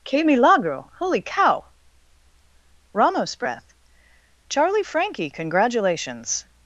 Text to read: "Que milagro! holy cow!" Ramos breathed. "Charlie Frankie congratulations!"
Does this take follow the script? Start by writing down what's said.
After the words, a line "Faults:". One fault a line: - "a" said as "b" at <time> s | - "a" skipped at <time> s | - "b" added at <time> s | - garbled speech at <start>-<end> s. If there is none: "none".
"Que milagro! holy cow!" Ramos breath. "Charlie Frankie congratulations!"
Faults:
- "breathed" said as "breath" at 3.4 s